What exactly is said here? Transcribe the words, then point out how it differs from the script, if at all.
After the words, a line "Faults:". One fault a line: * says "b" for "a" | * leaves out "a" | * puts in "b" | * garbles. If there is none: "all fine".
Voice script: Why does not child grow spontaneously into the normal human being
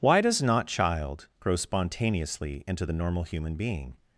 Why does not child grow spontaneously into the normal human being
Faults:
all fine